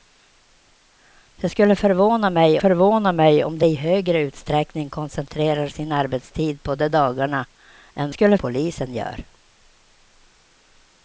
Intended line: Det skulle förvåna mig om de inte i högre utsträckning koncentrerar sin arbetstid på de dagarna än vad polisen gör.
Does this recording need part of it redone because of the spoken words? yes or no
yes